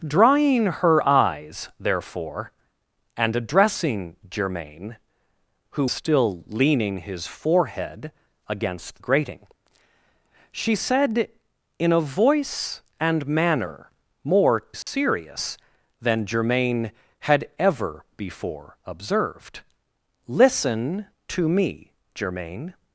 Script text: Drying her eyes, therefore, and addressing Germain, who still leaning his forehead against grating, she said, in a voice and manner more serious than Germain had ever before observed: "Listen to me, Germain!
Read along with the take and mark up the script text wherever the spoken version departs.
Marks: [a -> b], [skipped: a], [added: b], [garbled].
Drying her eyes, therefore, and addressing Germain, who still leaning his forehead against grating, she said, in a voice and manner more serious than Germain had ever before observed: "Listen to me, Germain!